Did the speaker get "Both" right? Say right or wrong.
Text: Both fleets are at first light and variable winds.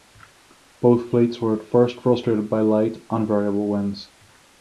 right